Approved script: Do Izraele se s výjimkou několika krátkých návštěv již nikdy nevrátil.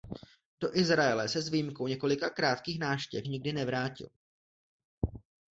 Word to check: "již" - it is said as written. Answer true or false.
false